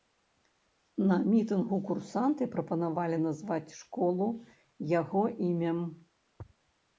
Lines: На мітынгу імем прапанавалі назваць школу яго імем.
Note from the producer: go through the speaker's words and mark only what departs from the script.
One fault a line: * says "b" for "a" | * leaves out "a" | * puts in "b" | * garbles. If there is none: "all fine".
* says "курсанты" for "імем"